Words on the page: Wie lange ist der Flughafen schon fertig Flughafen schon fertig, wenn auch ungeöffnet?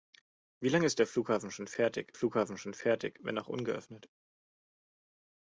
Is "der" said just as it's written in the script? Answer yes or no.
yes